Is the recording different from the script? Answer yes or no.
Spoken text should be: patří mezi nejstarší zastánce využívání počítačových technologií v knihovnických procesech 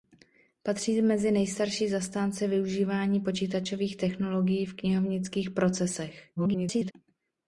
yes